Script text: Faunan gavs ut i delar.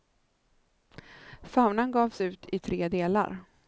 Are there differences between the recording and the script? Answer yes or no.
yes